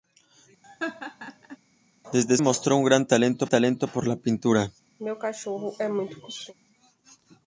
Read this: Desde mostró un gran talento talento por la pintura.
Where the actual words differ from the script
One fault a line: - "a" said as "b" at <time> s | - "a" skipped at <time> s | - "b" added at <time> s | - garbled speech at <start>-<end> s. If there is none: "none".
none